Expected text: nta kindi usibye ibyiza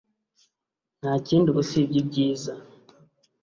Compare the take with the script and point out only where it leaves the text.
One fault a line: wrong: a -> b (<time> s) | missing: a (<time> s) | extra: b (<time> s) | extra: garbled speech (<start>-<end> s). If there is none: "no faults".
no faults